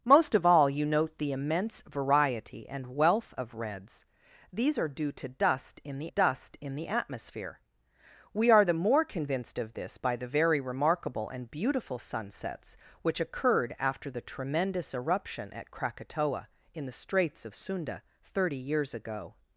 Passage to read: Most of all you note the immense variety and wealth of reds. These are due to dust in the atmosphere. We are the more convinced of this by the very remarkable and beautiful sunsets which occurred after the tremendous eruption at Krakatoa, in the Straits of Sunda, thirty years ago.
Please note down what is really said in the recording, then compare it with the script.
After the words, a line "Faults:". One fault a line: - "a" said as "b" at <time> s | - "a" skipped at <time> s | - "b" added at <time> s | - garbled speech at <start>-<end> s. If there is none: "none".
Most of all you note the immense variety and wealth of reds. These are due to dust in the dust in the atmosphere. We are the more convinced of this by the very remarkable and beautiful sunsets which occurred after the tremendous eruption at Krakatoa, in the Straits of Sunda, thirty years ago.
Faults:
- "dust in the" added at 6.1 s